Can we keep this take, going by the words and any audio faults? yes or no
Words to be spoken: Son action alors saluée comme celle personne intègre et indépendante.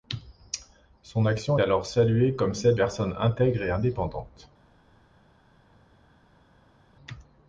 yes